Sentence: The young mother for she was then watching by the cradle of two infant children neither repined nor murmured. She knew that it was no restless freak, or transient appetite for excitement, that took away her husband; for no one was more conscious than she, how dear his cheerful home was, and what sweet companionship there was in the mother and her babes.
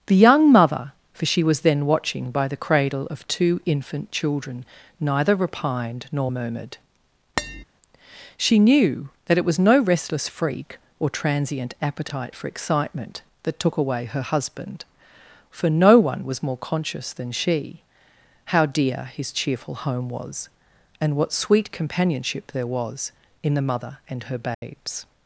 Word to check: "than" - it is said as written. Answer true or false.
true